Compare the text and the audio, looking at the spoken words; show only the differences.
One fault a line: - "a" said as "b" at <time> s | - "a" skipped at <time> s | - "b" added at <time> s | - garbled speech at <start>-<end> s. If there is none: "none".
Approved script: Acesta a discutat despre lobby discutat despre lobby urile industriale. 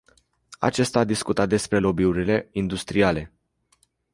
- "discutat despre lobby" skipped at 2.0 s